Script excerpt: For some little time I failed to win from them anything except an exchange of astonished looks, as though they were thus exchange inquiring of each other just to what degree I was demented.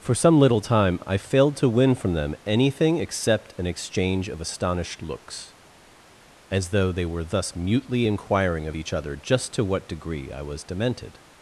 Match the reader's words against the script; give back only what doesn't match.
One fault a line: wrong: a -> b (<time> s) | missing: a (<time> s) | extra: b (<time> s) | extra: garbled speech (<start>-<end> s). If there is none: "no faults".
wrong: exchange -> mutely (7.5 s)